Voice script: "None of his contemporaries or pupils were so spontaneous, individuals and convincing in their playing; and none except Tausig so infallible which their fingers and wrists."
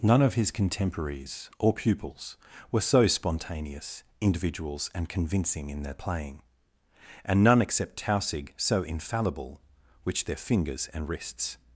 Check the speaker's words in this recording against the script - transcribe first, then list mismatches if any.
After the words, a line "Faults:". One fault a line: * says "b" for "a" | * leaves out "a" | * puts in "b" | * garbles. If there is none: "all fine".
"None of his contemporaries or pupils were so spontaneous, individuals and convincing in their playing; and none except Tausig so infallible which their fingers and wrists."
Faults:
all fine